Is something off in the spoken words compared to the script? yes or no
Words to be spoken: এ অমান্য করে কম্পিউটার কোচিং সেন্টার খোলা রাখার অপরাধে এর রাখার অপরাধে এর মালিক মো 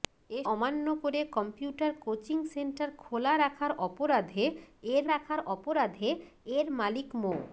no